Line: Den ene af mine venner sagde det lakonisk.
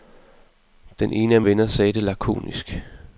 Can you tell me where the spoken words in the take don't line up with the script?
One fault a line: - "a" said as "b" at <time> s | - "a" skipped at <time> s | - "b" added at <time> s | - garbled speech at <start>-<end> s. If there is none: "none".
- "mine" skipped at 1.4 s